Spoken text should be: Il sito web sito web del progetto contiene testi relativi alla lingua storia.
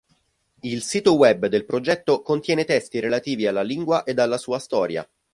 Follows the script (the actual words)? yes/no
no